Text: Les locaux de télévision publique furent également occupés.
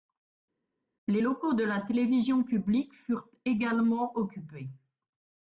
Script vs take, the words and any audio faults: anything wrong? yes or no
yes